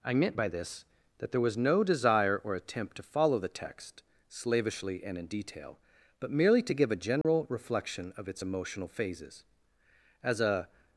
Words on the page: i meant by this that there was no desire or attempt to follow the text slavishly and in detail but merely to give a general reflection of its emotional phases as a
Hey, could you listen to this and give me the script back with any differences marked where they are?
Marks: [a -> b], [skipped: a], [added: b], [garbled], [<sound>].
i meant by this that there was no desire or attempt to follow the text slavishly and in detail but merely to give a general [dropout] reflection of its emotional phases as a